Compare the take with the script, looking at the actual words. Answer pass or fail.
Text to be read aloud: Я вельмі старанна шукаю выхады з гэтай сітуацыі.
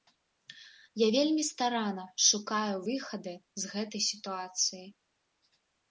pass